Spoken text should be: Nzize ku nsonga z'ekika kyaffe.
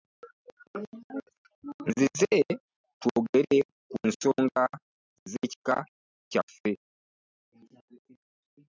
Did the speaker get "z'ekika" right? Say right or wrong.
right